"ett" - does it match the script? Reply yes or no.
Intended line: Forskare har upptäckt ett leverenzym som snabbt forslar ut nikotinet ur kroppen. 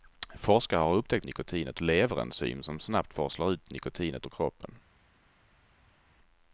no